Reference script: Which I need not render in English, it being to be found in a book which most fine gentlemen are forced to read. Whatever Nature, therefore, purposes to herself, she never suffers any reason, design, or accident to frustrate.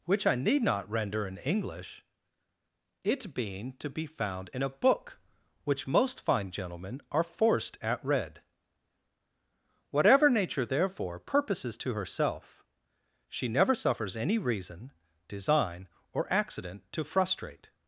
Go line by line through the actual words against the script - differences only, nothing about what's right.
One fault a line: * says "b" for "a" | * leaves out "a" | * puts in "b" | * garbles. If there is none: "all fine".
* says "at" for "to"